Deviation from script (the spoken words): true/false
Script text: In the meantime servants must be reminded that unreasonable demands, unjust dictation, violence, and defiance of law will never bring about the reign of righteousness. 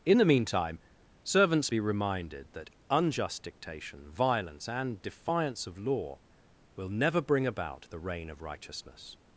true